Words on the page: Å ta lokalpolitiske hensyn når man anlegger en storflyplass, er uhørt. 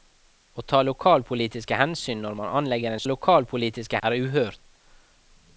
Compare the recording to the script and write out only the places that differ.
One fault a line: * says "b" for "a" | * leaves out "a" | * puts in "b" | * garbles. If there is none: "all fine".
* says "lokalpolitiske" for "storflyplass"